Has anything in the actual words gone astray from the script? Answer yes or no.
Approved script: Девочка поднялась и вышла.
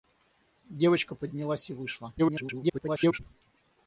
yes